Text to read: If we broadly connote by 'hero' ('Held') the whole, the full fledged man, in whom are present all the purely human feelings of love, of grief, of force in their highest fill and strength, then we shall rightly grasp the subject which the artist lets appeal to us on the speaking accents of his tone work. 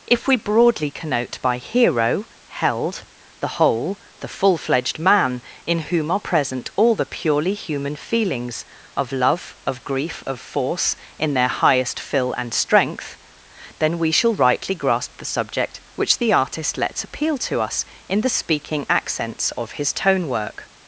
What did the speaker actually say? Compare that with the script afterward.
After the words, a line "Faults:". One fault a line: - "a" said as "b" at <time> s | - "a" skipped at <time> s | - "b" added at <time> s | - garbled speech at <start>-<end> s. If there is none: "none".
If we broadly connote by 'hero' ('Held') the whole, the full fledged man, in whom are present all the purely human feelings of love, of grief, of force in their highest fill and strength, then we shall rightly grasp the subject which the artist lets appeal to us in the speaking accents of his tone work.
Faults:
- "on" said as "in" at 18.1 s